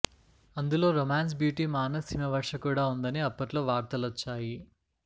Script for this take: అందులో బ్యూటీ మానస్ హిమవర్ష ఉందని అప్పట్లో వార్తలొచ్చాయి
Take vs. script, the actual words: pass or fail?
fail